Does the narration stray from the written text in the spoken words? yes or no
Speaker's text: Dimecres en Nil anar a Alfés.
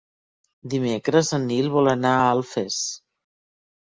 yes